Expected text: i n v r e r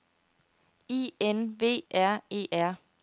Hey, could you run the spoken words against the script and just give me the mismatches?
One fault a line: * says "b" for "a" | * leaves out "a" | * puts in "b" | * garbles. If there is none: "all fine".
all fine